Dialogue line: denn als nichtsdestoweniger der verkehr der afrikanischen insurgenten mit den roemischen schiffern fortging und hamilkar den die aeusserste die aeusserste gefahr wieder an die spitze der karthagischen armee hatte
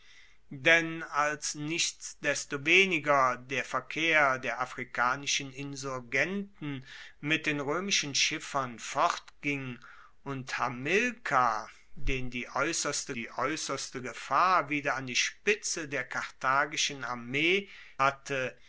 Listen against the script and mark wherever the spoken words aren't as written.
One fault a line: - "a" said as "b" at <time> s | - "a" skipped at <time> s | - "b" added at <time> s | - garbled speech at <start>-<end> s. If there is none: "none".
none